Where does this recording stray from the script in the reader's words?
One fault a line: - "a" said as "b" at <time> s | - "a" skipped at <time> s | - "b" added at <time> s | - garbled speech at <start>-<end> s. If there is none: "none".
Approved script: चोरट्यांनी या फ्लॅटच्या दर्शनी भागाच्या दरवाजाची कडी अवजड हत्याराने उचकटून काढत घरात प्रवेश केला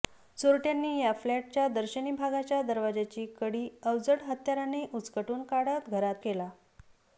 - "प्रवेश" skipped at 6.2 s